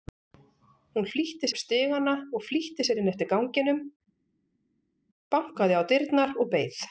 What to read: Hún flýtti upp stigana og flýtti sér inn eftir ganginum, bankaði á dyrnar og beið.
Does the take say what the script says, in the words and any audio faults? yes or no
yes